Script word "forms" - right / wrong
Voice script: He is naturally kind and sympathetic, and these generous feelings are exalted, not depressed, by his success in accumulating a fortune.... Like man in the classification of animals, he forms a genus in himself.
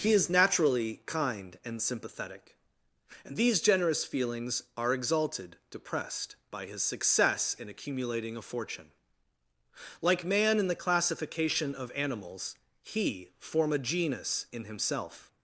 wrong